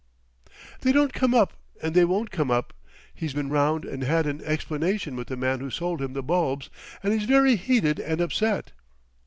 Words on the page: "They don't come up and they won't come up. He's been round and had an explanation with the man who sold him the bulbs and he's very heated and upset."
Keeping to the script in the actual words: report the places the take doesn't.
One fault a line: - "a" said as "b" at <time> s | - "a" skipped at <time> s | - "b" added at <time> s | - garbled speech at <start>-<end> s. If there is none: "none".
none